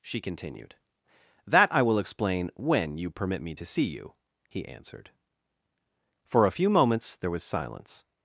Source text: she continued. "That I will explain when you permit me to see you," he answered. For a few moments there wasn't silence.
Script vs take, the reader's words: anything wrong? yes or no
yes